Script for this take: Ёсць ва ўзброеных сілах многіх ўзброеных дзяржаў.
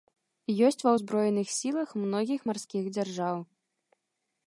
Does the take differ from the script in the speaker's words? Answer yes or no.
yes